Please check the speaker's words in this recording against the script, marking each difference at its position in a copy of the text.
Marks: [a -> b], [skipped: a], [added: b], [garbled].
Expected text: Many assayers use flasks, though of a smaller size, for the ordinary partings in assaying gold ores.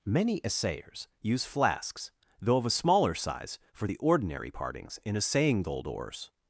Many assayers use flasks, though of a smaller size, for the ordinary partings in assaying gold ores.